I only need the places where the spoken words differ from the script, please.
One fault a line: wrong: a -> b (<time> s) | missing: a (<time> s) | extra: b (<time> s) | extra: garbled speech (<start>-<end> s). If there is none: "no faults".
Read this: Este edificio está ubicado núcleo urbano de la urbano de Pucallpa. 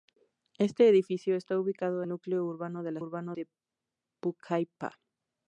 no faults